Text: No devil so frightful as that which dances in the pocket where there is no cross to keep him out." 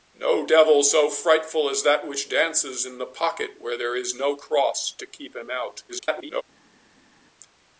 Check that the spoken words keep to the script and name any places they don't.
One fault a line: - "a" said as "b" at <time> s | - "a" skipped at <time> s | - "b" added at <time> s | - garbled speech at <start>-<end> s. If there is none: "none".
- garbled speech at 5.9-6.4 s